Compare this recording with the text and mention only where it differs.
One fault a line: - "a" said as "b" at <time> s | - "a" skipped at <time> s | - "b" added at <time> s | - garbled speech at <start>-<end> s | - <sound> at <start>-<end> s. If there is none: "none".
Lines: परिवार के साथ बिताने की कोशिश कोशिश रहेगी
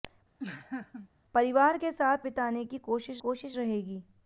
- laugh at 0.4-1.1 s